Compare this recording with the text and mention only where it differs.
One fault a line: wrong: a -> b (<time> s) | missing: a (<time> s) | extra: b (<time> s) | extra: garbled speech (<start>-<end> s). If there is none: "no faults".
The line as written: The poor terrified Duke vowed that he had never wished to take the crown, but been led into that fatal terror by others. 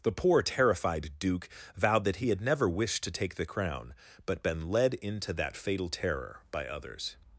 no faults